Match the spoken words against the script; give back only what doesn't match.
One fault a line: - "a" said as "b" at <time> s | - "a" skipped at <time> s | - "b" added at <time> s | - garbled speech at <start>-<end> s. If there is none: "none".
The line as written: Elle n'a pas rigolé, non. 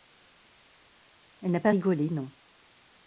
none